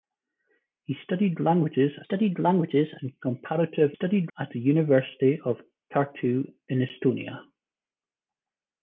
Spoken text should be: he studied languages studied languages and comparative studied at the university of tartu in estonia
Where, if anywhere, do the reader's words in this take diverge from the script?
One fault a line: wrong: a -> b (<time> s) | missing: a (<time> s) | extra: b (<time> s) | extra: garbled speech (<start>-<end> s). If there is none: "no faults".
no faults